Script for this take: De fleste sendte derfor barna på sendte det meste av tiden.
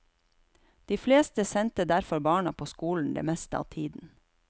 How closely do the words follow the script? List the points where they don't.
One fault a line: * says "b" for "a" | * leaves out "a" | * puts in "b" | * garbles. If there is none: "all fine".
* says "skolen" for "sendte"